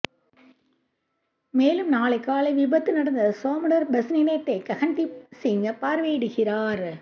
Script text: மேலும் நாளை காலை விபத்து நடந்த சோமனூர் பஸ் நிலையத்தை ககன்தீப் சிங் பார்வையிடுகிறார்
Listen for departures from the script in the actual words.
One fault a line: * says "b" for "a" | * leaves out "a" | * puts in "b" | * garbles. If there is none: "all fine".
all fine